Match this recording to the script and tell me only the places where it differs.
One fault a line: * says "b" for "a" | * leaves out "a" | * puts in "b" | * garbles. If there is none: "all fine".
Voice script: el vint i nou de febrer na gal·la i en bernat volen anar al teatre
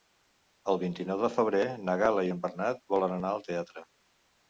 all fine